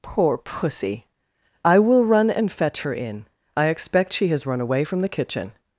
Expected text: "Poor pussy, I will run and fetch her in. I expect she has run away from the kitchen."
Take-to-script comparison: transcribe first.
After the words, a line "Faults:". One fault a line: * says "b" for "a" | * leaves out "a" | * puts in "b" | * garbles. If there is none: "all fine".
"Poor pussy, I will run and fetch her in. I expect she has run away from the kitchen."
Faults:
all fine